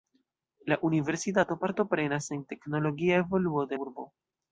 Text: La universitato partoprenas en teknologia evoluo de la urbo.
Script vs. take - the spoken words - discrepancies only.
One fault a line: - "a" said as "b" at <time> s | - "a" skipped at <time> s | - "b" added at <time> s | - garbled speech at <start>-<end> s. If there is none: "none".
- "la" skipped at 3.8 s